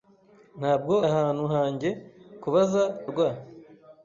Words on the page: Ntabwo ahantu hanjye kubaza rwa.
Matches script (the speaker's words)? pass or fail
pass